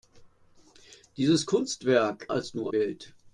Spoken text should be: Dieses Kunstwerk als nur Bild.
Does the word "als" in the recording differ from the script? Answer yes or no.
no